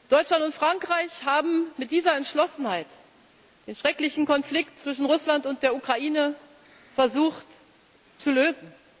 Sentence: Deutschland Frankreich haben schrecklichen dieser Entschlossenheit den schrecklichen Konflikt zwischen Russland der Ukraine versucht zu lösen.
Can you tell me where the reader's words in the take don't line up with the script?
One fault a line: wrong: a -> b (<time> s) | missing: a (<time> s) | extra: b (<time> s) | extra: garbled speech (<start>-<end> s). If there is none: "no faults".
extra: und (0.4 s)
wrong: schrecklichen -> mit (1.8 s)
extra: und (5.5 s)